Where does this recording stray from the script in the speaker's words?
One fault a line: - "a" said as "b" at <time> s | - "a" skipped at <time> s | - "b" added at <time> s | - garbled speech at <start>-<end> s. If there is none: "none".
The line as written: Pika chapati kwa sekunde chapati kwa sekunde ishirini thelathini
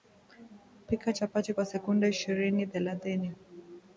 - "chapati kwa sekunde" skipped at 2.1 s